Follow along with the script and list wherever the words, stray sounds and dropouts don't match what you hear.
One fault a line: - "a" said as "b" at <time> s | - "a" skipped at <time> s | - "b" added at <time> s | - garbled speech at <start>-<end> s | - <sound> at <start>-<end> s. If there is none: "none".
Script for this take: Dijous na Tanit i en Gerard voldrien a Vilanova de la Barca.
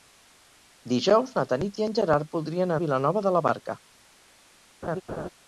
- laugh at 4.8-5.3 s